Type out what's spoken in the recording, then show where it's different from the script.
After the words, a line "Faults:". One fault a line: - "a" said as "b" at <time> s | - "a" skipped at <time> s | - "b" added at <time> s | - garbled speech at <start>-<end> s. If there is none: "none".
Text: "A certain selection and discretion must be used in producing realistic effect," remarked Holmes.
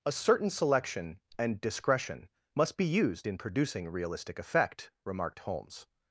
"A certain selection and discretion must be used in producing realistic effect," remarked Holmes.
Faults:
none